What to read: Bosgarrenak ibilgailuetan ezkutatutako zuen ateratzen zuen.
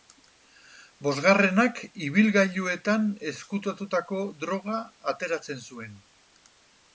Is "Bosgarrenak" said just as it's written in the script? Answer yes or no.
yes